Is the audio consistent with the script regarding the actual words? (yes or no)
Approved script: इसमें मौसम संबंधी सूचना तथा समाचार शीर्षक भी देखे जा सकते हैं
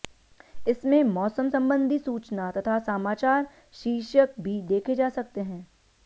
yes